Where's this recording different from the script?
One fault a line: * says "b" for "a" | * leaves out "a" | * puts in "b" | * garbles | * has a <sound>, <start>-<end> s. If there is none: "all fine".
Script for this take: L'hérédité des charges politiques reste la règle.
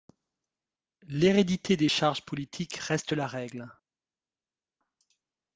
all fine